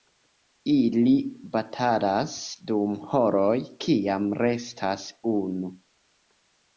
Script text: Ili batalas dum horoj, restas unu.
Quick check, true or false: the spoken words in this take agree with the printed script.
false